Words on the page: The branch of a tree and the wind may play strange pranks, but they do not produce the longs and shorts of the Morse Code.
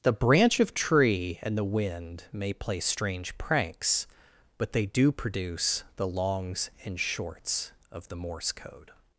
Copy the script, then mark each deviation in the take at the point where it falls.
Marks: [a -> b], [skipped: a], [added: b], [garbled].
The branch of [skipped: a] tree and the wind may play strange pranks, but they do [skipped: not] produce the longs and shorts of the Morse Code.